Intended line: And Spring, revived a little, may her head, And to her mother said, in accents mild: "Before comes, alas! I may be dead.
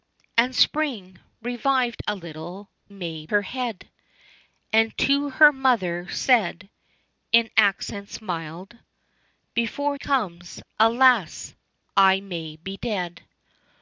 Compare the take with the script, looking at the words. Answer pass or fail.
pass